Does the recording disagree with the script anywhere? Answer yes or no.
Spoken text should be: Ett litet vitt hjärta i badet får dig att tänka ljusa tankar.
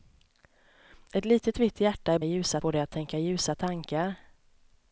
yes